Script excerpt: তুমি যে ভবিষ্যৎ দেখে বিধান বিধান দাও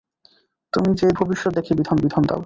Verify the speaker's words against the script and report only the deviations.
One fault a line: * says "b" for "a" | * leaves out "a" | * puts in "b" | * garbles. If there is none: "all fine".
all fine